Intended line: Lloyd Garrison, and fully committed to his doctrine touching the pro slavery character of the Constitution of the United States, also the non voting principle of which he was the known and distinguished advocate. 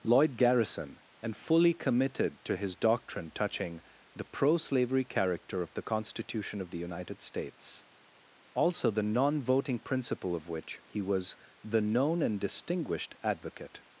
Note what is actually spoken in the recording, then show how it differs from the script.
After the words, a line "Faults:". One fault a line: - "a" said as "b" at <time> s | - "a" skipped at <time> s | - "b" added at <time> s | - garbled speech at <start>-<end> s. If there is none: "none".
Lloyd Garrison, and fully committed to his doctrine touching the pro slavery character of the Constitution of the United States, also the non voting principle of which he was the known and distinguished advocate.
Faults:
none